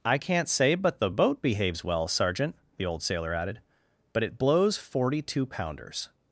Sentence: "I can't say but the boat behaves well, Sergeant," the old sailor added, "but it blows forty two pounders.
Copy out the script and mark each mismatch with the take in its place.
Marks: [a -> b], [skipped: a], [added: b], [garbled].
"I can't say but the boat behaves well, Sergeant," the old sailor added, "but it blows forty two pounders.